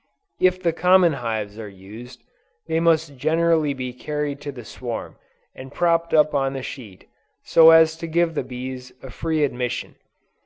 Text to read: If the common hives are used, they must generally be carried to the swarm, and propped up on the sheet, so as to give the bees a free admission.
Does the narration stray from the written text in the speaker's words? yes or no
no